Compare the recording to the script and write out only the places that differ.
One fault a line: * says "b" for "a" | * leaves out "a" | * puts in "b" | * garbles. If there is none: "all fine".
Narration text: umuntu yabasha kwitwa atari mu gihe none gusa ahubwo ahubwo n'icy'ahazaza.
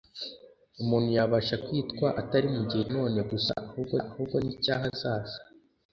all fine